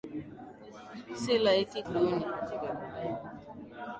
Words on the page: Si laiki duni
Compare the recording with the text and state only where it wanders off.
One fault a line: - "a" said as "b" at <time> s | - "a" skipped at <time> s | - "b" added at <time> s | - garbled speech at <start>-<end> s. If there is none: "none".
none